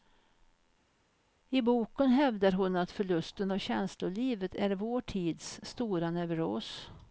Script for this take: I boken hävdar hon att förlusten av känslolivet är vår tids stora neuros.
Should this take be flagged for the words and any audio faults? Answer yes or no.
no